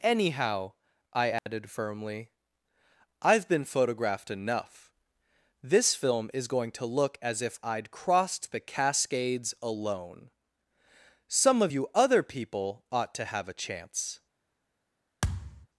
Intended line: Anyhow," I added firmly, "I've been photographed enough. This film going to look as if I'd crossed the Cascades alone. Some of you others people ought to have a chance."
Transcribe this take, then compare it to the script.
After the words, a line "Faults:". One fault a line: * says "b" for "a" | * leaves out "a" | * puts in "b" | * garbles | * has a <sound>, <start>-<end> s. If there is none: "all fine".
Anyhow," I added firmly, "I've been photographed enough. This film is going to look as if I'd crossed the Cascades alone. Some of you other people ought to have a chance."
Faults:
* has a dropout, 1.4-1.5 s
* puts in "is"
* says "other" for "others"
* has a thud, 15.2-15.7 s